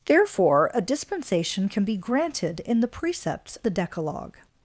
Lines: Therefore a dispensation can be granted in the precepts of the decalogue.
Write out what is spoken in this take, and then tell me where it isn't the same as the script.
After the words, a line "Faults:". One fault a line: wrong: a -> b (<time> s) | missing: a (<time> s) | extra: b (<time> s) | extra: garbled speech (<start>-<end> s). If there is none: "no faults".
Therefore a dispensation can be granted in the precepts the decalogue.
Faults:
missing: of (3.6 s)